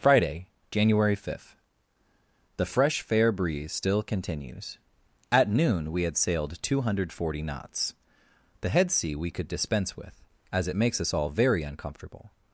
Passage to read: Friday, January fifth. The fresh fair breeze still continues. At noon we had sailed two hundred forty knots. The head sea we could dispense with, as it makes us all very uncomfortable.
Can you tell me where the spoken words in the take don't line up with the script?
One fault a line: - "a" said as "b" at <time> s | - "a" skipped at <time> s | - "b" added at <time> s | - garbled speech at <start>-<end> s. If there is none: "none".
none